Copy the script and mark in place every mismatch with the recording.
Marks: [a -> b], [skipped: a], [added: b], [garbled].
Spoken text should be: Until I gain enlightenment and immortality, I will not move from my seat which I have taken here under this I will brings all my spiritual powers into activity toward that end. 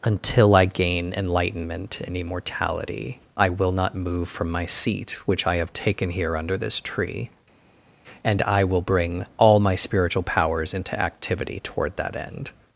Until I gain enlightenment and immortality, I will not move from my seat which I have taken here under this [added: tree and] I will [brings -> bring] all my spiritual powers into activity toward that end.